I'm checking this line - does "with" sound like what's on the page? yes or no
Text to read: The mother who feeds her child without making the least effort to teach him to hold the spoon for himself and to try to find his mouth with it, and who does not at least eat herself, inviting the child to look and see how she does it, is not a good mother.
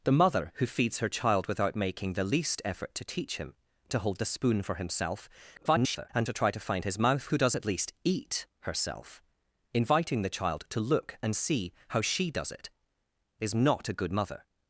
no